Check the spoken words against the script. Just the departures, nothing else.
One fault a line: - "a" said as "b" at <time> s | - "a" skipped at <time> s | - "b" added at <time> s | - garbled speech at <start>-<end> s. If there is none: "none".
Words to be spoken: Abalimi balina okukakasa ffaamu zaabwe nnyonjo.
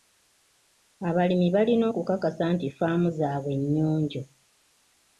- "nti" added at 2.5 s